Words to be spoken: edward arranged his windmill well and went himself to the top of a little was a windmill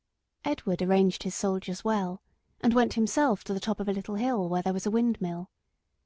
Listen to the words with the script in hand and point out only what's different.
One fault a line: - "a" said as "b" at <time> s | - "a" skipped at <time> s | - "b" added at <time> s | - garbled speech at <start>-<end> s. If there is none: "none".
- "windmill" said as "soldiers" at 1.4 s
- "hill where there" added at 4.2 s